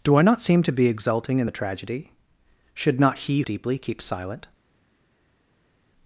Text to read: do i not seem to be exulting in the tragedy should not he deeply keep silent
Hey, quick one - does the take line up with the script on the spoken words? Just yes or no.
yes